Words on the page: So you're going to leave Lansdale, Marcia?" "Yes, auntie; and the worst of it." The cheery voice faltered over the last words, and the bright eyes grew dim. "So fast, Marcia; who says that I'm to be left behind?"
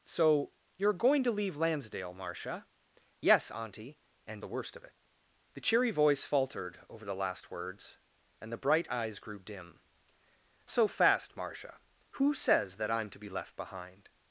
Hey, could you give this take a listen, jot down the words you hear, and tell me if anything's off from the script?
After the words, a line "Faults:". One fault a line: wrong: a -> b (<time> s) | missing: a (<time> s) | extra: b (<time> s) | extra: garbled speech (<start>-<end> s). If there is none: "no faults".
So you're going to leave Lansdale, Marcia?" "Yes, auntie; and the worst of it." The cheery voice faltered over the last words, and the bright eyes grew dim. "So fast, Marcia; who says that I'm to be left behind?"
Faults:
no faults